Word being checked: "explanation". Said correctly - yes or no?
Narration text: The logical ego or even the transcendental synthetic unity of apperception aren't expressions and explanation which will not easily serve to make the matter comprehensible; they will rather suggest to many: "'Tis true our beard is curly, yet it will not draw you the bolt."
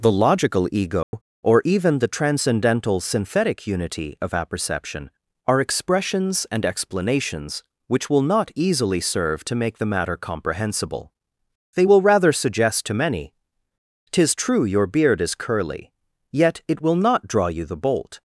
no